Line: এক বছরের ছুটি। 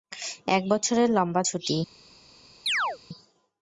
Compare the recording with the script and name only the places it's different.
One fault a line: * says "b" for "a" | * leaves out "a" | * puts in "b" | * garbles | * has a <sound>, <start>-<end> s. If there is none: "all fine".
* puts in "লম্বা"
* has a chirp, 2.7-3.0 s